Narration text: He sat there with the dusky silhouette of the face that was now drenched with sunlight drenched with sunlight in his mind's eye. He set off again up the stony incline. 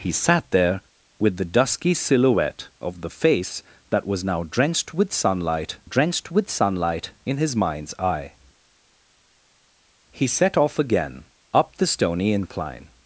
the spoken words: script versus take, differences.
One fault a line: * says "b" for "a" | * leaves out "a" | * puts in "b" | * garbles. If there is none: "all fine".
all fine